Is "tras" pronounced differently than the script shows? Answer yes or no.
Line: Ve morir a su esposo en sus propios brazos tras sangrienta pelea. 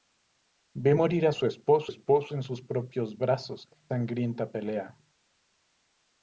yes